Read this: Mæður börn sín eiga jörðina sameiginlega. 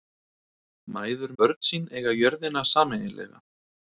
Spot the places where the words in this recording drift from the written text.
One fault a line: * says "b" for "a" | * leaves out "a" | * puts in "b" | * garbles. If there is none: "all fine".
all fine